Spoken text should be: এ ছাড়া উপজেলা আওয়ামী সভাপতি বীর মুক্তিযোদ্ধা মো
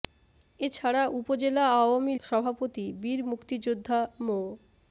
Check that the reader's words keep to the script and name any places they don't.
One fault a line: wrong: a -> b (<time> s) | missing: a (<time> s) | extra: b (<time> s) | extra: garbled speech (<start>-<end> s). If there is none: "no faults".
no faults